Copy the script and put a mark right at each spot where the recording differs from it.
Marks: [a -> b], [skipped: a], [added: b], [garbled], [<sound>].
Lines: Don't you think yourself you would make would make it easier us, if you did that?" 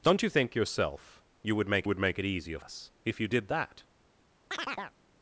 Don't you think yourself you would make would make it easier us, if you did that?" [chirp]